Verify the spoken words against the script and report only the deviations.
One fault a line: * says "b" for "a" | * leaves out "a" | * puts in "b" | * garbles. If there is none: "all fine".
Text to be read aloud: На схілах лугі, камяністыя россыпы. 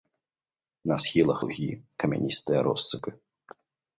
all fine